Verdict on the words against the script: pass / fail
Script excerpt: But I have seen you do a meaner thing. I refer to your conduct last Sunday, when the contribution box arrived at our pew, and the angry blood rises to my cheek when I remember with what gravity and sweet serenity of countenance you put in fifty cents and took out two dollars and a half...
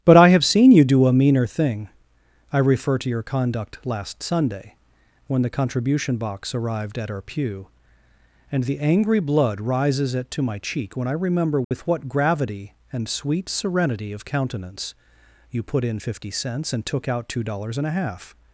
fail